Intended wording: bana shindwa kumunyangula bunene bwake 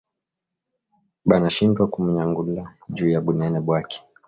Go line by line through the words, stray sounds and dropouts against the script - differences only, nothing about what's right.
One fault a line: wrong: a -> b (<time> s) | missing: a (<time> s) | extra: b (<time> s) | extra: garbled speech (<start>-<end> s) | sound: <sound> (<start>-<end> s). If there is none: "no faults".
extra: juya (3.0 s)